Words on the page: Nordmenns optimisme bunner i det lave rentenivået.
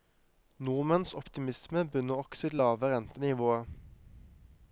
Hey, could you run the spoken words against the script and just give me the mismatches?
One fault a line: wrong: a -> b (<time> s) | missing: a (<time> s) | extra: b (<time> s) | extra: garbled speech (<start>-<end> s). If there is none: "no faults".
extra: også (2.2 s)